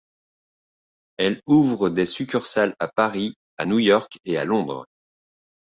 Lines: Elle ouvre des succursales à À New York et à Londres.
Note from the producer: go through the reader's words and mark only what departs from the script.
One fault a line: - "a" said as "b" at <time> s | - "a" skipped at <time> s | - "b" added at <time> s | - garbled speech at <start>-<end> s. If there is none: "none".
- "Paris" added at 2.9 s